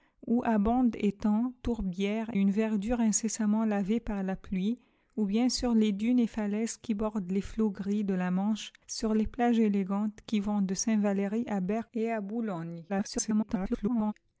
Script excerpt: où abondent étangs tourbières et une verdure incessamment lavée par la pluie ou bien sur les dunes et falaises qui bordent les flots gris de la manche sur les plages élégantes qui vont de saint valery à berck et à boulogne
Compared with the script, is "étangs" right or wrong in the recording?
right